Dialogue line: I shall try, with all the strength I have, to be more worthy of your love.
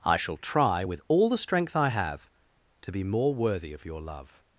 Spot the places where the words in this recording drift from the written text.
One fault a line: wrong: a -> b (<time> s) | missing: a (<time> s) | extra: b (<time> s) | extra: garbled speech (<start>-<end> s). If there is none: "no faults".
no faults